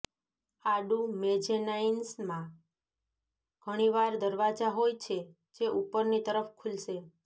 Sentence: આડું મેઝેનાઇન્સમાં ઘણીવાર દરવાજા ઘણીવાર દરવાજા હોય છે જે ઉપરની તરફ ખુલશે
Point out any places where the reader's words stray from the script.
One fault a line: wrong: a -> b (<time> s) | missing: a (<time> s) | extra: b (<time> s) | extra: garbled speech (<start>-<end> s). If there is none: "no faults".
missing: ઘણીવાર દરવાજા (4.7 s)